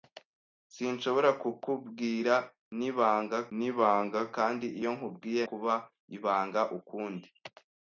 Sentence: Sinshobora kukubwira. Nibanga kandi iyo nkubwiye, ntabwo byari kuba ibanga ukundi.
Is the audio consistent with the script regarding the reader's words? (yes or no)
no